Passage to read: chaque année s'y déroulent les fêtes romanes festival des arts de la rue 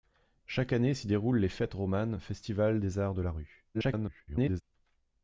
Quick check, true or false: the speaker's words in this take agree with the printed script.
false